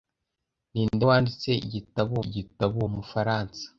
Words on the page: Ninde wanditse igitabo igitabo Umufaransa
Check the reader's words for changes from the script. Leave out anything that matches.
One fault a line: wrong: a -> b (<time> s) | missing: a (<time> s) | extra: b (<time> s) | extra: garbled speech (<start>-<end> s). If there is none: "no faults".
no faults